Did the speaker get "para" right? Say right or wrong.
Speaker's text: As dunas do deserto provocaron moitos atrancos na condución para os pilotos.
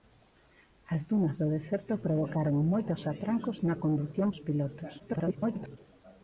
wrong